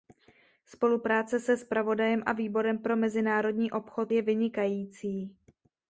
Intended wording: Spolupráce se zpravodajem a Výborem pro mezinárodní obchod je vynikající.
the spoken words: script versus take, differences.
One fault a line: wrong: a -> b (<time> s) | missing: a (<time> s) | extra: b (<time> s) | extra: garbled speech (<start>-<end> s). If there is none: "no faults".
no faults